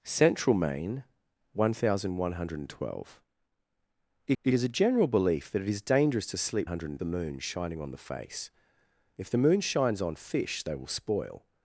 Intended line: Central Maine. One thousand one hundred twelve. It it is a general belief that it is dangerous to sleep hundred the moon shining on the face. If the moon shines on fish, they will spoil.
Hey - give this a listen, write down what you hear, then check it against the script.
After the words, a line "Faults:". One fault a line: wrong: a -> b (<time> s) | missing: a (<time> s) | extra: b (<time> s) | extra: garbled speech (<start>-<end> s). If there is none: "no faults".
Central Maine. One thousand one hundred twelve. It it is a general belief that it is dangerous to sleep hundred the moon shining on the face. If the moon shines on fish, they will spoil.
Faults:
no faults